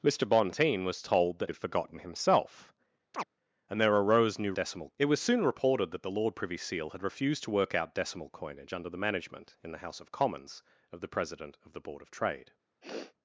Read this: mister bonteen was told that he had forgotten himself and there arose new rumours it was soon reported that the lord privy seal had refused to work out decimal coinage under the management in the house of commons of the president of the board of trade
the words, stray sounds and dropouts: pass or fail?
fail